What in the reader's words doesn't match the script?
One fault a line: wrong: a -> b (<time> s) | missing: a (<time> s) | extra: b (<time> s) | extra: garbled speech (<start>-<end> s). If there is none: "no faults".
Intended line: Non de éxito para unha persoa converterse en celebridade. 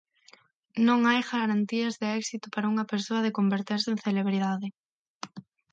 extra: hai garantías (1.1 s)
extra: de (3.2 s)